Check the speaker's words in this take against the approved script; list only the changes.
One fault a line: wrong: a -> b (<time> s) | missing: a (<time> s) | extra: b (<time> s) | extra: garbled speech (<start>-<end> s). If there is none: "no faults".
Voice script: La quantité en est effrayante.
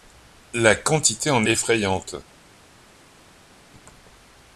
missing: est (1.4 s)